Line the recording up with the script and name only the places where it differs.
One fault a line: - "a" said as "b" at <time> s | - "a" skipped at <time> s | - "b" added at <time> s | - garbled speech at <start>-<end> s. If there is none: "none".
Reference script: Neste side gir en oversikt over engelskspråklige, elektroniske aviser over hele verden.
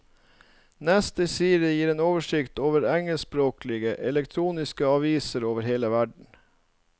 none